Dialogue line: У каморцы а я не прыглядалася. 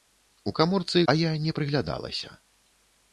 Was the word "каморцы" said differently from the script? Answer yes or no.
no